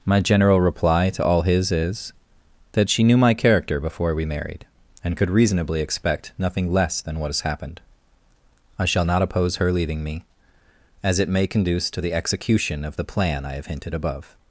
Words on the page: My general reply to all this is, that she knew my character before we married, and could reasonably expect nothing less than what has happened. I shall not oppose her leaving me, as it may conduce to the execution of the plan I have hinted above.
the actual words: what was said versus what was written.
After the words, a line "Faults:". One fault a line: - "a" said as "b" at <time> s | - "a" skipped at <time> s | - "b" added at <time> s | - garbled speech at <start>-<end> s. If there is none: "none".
My general reply to all his is, that she knew my character before we married, and could reasonably expect nothing less than what has happened. I shall not oppose her leaving me, as it may conduce to the execution of the plan I have hinted above.
Faults:
- "this" said as "his" at 1.4 s